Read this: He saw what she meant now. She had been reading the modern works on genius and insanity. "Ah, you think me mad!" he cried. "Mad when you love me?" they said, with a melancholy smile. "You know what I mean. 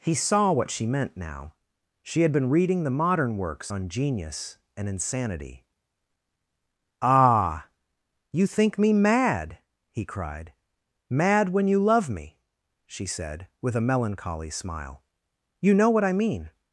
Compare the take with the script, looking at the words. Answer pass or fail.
fail